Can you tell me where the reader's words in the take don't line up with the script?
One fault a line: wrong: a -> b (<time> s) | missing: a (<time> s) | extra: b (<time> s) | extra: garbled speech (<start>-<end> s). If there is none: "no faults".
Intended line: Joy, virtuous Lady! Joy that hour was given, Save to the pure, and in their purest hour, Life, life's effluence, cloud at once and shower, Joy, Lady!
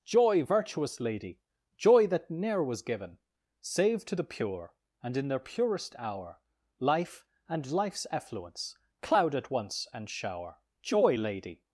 wrong: hour -> ne'er (2.3 s)
extra: and (7.5 s)